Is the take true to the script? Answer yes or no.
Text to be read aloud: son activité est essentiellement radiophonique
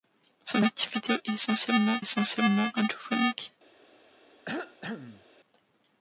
no